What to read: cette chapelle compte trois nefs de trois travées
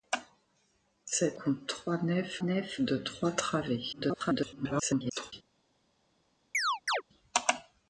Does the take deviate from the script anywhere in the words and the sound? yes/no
yes